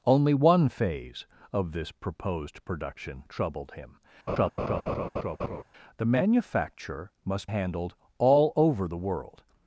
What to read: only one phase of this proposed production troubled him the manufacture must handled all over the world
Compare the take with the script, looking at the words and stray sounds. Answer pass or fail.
fail